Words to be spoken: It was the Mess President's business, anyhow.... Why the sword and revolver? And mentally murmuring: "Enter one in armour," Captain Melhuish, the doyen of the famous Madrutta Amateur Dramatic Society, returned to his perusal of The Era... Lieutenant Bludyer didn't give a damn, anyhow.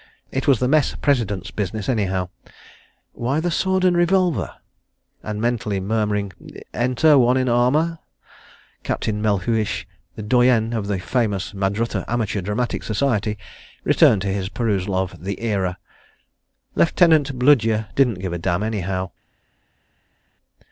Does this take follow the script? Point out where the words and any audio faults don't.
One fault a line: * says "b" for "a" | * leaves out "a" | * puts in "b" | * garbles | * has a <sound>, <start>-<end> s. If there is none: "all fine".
all fine